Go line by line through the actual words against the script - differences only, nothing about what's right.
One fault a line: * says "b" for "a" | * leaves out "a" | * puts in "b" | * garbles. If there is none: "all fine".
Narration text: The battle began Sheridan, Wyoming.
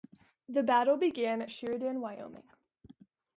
all fine